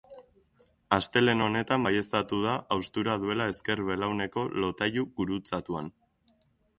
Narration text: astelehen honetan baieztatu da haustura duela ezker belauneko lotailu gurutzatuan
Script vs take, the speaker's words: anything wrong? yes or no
no